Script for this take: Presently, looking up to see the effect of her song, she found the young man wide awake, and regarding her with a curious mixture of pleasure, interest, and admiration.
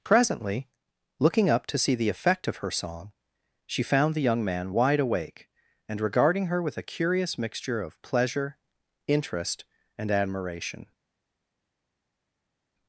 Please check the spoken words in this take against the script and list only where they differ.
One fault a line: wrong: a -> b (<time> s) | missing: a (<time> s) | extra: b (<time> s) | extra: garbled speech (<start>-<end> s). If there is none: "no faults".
no faults